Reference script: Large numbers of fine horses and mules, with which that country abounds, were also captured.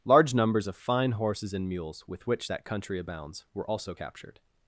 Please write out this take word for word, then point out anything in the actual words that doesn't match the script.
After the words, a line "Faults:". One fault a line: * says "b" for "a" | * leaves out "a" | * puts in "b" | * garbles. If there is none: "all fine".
Large numbers of fine horses and mules, with which that country abounds, were also captured.
Faults:
all fine